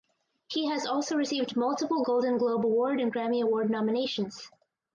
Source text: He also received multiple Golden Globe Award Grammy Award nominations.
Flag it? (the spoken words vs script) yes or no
yes